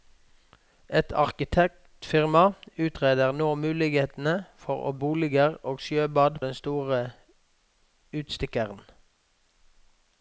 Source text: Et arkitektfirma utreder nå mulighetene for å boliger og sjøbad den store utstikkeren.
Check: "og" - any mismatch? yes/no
no